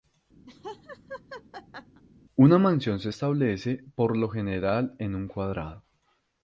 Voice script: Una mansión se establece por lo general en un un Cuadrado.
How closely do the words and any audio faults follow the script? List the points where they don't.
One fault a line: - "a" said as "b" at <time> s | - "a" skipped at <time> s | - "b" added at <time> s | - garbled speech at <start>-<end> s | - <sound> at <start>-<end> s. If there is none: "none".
- laugh at 0.5-2.0 s
- "un" skipped at 5.3 s